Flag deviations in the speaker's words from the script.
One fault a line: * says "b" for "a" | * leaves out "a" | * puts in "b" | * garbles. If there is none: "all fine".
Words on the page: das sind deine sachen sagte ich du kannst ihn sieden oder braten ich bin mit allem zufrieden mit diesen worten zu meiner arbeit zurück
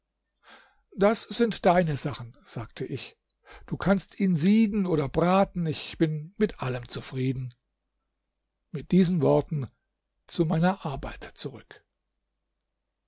all fine